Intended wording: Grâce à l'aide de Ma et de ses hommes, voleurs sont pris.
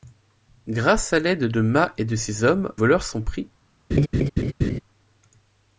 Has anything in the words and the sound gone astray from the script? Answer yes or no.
yes